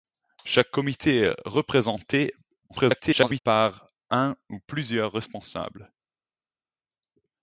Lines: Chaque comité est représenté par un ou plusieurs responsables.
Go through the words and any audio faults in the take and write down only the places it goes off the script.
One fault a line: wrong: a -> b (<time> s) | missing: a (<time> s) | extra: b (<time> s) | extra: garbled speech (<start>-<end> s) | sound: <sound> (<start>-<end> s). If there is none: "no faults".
extra: garbled speech (2.7-3.4 s)